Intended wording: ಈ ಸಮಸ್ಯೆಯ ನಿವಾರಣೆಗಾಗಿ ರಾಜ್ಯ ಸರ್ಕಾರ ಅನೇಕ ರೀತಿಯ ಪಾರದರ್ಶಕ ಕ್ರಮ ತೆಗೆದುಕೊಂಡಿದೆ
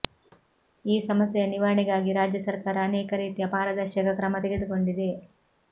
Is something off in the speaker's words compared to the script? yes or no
no